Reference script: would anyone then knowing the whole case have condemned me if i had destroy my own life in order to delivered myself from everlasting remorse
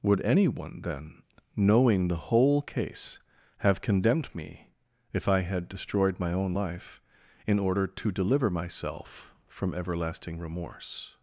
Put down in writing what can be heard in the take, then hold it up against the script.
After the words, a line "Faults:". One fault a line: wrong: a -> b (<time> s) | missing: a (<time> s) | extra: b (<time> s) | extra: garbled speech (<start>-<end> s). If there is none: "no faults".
would anyone then knowing the whole case have condemned me if i had destroyed my own life in order to deliver myself from everlasting remorse
Faults:
wrong: destroy -> destroyed (5.7 s)
wrong: delivered -> deliver (8.1 s)